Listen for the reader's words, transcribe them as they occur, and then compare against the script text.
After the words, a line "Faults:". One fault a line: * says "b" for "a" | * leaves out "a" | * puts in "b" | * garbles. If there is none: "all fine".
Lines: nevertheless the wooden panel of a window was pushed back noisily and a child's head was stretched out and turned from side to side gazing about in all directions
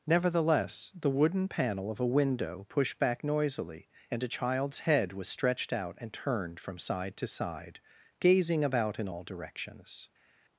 nevertheless the wooden panel of a window pushed back noisily and a child's head was stretched out and turned from side to side gazing about in all directions
Faults:
* leaves out "was"